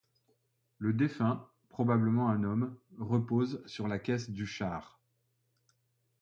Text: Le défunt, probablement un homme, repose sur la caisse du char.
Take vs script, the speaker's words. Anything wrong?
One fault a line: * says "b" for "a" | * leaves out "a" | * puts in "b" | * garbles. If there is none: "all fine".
all fine